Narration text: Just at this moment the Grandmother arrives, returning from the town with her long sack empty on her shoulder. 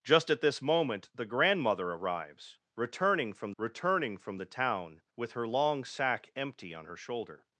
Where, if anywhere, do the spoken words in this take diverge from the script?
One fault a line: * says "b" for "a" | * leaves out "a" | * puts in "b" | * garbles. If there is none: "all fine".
* puts in "returning from"